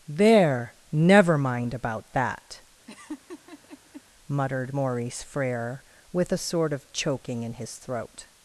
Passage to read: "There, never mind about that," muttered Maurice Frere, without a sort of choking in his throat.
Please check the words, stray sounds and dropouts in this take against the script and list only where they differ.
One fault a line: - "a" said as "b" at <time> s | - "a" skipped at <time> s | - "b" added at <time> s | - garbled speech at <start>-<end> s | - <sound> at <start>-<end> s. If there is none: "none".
- laugh at 2.9-4.0 s
- "without" said as "with" at 6.1 s